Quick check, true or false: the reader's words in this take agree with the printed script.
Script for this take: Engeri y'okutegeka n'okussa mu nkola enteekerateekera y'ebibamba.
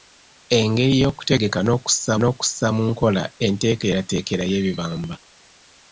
false